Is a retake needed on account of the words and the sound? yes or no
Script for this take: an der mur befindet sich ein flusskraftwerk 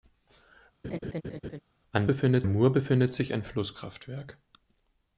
yes